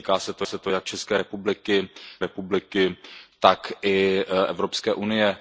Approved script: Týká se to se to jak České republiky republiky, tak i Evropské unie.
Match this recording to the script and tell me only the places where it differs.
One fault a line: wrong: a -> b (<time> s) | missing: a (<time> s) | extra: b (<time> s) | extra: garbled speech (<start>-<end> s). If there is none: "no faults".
no faults